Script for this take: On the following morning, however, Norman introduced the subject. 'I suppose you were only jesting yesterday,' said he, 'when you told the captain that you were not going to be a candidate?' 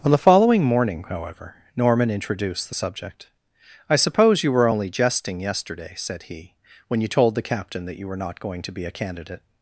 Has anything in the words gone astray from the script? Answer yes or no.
no